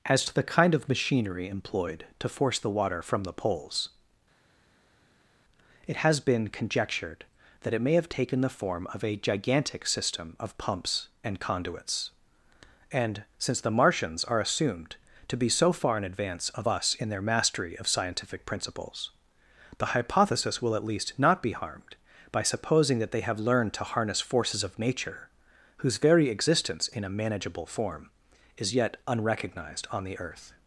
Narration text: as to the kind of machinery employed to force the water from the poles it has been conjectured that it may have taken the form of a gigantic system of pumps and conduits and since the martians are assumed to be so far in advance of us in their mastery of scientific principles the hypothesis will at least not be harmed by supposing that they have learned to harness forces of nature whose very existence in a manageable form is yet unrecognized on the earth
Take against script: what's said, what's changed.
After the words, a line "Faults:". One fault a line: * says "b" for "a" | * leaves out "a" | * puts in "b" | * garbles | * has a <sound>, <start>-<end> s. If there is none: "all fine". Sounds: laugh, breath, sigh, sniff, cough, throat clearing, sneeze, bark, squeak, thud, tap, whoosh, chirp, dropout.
as to the kind of machinery employed to force the water from the poles it has been conjectured that it may have taken the form of a gigantic system of pumps and conduits and since the martians are assumed to be so far in advance of us in their mastery of scientific principles the hypothesis will at least not be harmed by supposing that they have learned to harness forces of nature whose very existence in a manageable form is yet unrecognized on the earth
Faults:
all fine